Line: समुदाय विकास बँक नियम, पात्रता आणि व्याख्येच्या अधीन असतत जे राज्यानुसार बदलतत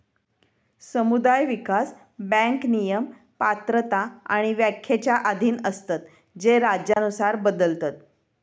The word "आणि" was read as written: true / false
true